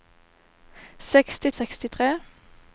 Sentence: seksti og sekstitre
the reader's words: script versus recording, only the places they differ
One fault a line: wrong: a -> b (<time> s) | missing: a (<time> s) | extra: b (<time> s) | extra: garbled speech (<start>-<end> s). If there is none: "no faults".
no faults